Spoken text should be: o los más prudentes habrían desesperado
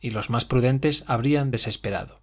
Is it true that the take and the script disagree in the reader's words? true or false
true